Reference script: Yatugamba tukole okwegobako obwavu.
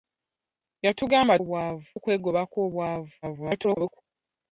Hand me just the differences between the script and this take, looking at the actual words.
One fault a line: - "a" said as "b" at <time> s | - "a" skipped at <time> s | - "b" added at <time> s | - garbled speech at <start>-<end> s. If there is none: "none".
- "tukole" said as "obwavu" at 1.4 s
- garbled speech at 3.2-4.0 s